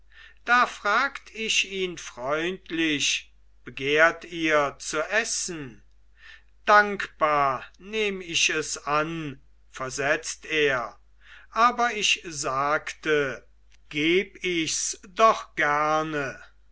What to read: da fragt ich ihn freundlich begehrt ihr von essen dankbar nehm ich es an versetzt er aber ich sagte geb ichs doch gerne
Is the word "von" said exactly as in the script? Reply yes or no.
no